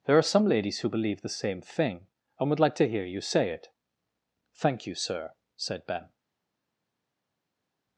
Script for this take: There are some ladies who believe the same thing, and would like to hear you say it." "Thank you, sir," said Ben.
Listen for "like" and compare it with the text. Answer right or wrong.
right